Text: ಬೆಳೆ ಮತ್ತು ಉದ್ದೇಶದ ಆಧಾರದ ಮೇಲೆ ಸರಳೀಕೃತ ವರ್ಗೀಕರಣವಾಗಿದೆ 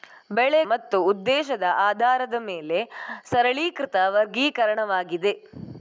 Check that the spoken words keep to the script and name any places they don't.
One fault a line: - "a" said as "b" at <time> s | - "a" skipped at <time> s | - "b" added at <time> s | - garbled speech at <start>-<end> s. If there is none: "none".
none